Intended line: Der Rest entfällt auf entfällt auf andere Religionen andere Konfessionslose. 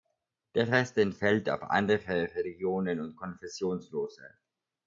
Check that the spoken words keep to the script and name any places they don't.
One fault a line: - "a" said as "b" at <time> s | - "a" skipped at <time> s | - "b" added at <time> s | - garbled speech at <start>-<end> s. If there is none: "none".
- "entfällt auf" skipped at 1.6 s
- "andere" said as "und" at 3.0 s